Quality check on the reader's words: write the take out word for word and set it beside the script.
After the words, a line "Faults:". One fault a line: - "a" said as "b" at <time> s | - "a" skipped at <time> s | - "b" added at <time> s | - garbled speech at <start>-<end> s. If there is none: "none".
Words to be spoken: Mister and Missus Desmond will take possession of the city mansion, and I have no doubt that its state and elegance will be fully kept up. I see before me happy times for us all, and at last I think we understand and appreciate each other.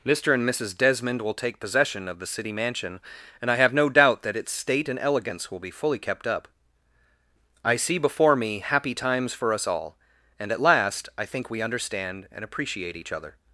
Mister and Missus Desmond will take possession of the city mansion, and I have no doubt that its state and elegance will be fully kept up. I see before me happy times for us all, and at last I think we understand and appreciate each other.
Faults:
none